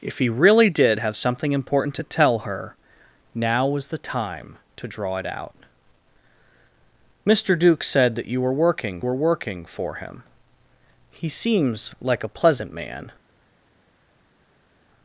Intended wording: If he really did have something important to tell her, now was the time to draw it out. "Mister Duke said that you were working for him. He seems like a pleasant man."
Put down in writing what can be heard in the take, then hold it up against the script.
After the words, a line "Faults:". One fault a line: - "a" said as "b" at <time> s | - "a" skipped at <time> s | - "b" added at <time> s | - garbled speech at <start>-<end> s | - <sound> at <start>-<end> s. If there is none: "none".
If he really did have something important to tell her, now was the time to draw it out. "Mister Duke said that you were working were working for him. He seems like a pleasant man."
Faults:
- "were working" added at 9.0 s